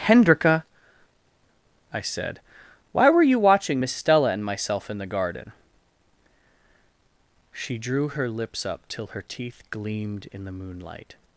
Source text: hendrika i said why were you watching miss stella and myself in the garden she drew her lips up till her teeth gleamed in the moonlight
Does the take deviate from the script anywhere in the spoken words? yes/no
no